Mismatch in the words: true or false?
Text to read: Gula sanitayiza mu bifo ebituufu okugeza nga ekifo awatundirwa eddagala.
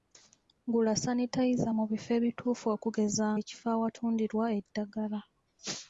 true